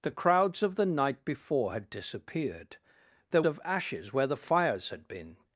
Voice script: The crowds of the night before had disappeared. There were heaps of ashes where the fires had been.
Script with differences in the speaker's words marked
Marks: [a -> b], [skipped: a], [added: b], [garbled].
The crowds of the night before had disappeared. There [skipped: were heaps] of ashes where the fires had been.